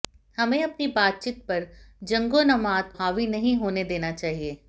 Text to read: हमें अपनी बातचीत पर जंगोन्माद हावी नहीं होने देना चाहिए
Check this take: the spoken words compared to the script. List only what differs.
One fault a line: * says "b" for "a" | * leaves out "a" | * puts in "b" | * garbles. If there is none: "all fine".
all fine